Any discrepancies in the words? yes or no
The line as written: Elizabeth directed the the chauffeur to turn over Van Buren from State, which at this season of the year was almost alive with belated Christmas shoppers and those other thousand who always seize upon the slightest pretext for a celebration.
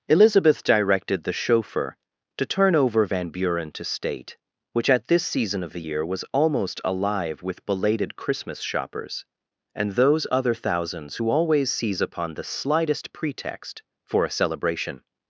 yes